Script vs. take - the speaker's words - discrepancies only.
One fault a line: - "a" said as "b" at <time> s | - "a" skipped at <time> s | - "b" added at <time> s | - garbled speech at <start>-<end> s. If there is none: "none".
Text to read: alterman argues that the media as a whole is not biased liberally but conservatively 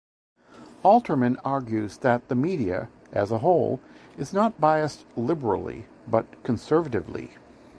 none